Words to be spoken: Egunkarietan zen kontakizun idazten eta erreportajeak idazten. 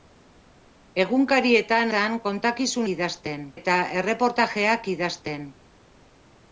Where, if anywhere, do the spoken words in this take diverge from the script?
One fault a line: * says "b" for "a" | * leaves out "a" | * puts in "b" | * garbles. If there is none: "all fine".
all fine